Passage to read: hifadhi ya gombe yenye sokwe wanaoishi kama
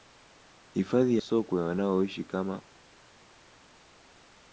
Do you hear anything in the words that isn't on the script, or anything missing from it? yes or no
yes